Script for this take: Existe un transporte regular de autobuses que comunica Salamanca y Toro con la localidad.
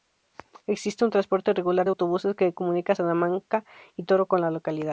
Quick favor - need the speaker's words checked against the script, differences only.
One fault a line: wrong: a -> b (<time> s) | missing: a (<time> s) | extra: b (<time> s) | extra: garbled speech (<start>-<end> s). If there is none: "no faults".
no faults